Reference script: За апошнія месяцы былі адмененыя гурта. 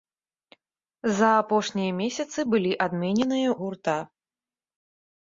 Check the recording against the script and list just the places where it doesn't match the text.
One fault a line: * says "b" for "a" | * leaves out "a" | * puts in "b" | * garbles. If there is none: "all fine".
all fine